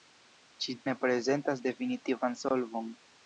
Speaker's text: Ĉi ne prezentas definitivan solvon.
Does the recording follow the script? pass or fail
pass